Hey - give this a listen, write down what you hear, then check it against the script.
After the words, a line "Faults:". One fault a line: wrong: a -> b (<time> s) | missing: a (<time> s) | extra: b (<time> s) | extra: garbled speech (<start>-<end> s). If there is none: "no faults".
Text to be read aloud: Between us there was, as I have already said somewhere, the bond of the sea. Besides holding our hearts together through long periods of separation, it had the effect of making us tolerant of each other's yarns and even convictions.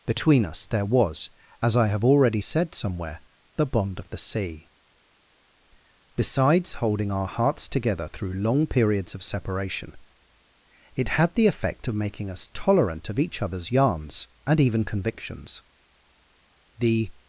Between us there was, as I have already said somewhere, the bond of the sea. Besides holding our hearts together through long periods of separation, it had the effect of making us tolerant of each other's yarns and even convictions. The
Faults:
extra: The (16.8 s)